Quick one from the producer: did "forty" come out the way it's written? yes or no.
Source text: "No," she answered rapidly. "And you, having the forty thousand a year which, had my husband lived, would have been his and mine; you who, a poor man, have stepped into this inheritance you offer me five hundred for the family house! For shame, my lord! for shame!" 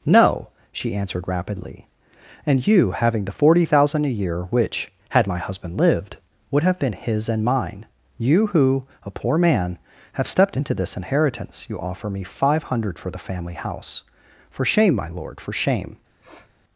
yes